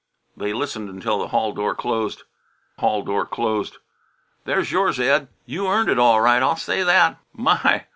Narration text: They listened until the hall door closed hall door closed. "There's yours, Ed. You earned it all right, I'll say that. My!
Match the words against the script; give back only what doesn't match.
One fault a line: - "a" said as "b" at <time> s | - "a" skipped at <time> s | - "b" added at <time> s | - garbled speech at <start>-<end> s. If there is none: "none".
none